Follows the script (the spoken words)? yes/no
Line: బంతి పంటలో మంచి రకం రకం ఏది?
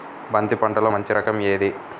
no